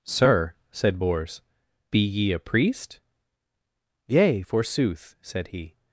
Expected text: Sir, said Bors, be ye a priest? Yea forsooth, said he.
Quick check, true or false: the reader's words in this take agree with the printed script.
true